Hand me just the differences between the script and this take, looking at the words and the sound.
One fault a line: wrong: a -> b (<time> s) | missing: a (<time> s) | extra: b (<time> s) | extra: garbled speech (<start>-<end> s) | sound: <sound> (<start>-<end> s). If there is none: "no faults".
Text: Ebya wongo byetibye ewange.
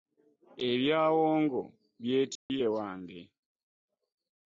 sound: dropout (2.4-2.5 s)